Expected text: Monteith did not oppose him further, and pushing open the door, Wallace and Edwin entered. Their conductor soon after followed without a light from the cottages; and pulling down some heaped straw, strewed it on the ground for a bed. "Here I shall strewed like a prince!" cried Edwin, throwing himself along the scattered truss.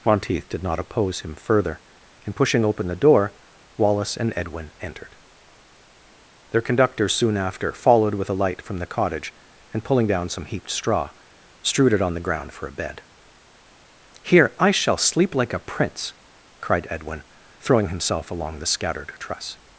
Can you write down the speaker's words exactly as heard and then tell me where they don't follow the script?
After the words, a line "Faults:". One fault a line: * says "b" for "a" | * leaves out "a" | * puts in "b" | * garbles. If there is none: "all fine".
Monteith did not oppose him further, and pushing open the door, Wallace and Edwin entered. Their conductor soon after followed with a light from the cottage; and pulling down some heaped straw, strewed it on the ground for a bed. "Here I shall sleep like a prince!" cried Edwin, throwing himself along the scattered truss.
Faults:
* says "with" for "without"
* says "cottage" for "cottages"
* says "sleep" for "strewed"